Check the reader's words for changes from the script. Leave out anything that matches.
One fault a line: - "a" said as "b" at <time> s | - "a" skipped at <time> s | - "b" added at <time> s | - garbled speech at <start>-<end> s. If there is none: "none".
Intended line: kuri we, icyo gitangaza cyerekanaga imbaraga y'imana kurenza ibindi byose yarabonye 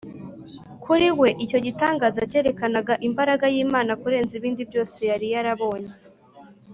- "yari" added at 5.1 s